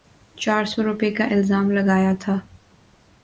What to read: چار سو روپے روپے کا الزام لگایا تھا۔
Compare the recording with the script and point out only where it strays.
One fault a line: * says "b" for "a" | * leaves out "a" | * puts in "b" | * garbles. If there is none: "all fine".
* leaves out "روپے"